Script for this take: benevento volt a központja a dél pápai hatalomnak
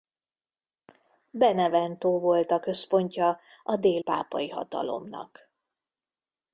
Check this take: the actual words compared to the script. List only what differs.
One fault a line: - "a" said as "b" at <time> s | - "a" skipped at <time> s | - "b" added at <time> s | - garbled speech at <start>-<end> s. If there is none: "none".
none